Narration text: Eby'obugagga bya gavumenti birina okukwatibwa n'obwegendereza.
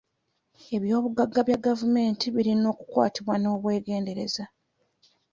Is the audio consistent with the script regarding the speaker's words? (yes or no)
yes